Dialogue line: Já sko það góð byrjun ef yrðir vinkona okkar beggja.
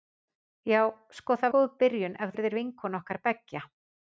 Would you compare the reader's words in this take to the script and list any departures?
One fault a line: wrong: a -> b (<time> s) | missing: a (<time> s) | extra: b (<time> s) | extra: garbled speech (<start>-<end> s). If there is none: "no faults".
no faults